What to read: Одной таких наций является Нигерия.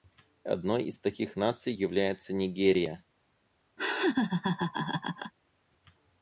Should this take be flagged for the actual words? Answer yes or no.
yes